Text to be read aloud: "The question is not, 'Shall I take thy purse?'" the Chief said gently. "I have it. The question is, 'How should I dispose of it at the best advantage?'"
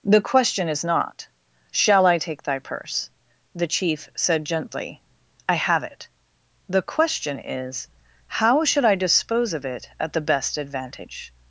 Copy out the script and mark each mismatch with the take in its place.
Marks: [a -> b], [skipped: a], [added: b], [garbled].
"The question is not, 'Shall I take thy purse?'" the Chief said gently. "I have it. The question is, 'How should I dispose of it at the best advantage?'"